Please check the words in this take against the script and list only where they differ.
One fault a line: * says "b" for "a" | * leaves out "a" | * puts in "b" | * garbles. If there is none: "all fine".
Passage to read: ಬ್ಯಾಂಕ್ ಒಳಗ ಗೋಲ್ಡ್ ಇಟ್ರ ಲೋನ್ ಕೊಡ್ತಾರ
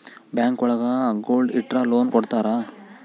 all fine